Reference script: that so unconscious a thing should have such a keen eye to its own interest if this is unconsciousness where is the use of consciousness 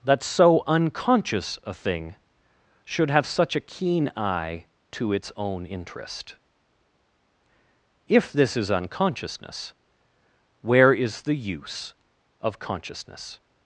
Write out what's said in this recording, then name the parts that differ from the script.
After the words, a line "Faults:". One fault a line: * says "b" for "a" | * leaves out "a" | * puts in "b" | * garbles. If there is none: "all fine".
that so unconscious a thing should have such a keen eye to its own interest if this is unconsciousness where is the use of consciousness
Faults:
all fine